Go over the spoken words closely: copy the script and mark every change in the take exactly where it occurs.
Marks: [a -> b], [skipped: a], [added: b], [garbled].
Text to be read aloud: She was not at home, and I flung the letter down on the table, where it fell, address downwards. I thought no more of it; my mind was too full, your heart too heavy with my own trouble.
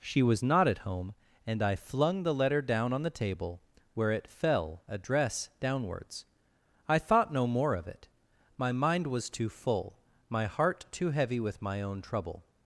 She was not at home, and I flung the letter down on the table, where it fell, address downwards. I thought no more of it; my mind was too full, [your -> my] heart too heavy with my own trouble.